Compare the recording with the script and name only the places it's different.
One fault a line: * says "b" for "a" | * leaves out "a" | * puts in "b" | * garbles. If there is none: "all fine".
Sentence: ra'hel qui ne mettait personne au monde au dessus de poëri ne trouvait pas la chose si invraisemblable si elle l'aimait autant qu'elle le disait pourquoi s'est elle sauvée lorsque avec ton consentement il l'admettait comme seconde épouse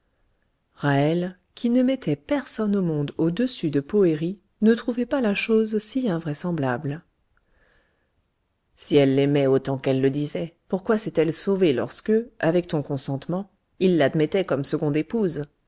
all fine